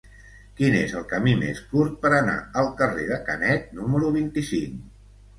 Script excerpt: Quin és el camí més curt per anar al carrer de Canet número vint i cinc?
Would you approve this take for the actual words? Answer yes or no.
yes